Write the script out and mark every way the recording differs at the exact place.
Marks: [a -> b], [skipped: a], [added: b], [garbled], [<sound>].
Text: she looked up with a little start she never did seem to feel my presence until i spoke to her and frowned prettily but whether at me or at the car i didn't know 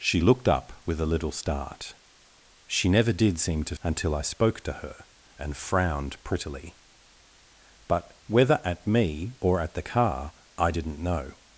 she looked up with a little start she never did seem to [skipped: feel my presence] until i spoke to her and frowned prettily but whether at me or at the car i didn't know